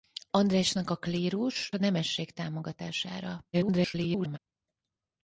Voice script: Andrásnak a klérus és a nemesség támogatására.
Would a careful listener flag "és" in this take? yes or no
yes